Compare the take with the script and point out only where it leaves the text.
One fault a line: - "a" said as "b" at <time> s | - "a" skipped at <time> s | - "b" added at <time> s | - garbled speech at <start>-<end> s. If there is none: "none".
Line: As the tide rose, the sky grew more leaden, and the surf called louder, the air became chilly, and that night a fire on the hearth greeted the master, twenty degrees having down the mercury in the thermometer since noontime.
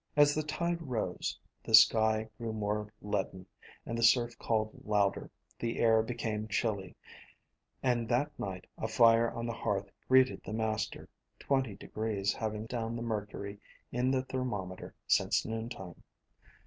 none